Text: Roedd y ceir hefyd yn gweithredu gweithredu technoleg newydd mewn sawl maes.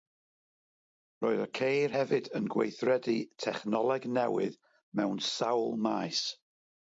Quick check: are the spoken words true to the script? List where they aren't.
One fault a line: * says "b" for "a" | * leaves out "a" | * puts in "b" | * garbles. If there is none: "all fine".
* leaves out "gweithredu"